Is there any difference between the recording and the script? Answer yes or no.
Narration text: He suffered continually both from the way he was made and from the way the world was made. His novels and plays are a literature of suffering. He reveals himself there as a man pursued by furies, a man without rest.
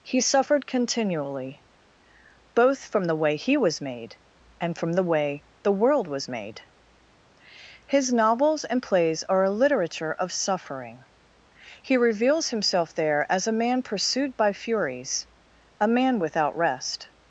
no